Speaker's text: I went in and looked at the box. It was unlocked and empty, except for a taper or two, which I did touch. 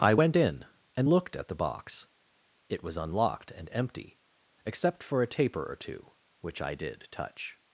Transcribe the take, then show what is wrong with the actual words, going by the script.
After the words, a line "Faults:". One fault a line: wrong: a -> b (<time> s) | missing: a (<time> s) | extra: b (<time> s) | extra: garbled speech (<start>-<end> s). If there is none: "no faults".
I went in and looked at the box. It was unlocked and empty, except for a taper or two, which I did touch.
Faults:
no faults